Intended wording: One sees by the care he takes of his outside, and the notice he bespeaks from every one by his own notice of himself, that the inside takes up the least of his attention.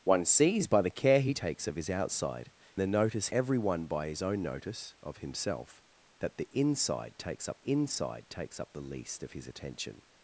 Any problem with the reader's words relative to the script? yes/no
yes